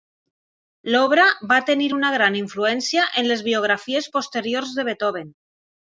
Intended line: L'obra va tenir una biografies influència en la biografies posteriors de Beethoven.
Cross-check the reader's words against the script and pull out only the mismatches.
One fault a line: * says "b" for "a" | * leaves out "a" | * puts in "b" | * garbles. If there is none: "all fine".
* says "gran" for "biografies"
* says "les" for "la"